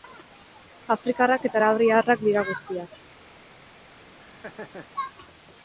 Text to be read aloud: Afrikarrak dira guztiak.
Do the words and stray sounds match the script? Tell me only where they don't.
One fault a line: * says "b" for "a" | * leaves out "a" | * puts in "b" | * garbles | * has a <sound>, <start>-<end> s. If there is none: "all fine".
* puts in "eta arabiarrak"
* has a laugh, 4.2-4.9 s